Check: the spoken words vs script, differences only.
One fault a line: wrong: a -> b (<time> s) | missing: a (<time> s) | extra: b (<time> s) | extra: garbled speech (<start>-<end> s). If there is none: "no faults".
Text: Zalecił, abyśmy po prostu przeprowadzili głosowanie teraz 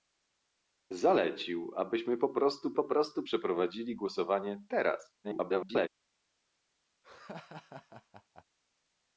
extra: po prostu (2.7 s)
extra: garbled speech (5.2-5.9 s)